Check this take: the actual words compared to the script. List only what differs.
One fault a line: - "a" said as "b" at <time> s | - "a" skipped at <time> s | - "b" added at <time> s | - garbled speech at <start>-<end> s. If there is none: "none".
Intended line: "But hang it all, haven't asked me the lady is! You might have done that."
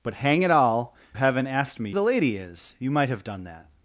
none